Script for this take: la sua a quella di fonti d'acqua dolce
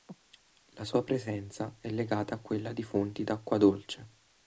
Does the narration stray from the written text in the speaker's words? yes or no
yes